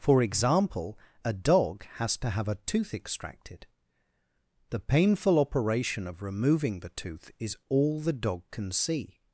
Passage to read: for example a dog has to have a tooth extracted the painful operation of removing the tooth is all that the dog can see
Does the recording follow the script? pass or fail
fail